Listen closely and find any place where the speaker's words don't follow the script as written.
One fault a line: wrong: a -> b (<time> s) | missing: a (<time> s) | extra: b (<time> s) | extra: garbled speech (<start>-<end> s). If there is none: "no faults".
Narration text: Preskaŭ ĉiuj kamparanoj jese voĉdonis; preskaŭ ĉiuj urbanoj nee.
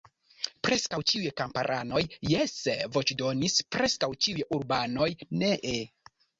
no faults